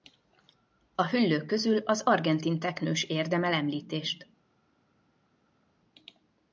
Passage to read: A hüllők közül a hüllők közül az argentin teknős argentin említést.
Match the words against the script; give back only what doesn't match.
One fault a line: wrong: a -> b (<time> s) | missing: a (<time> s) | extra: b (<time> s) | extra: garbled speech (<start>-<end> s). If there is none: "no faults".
missing: a hüllők közül (1.8 s)
wrong: argentin -> érdemel (3.0 s)